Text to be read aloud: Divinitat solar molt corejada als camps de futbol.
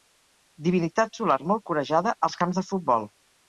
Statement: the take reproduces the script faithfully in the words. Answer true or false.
true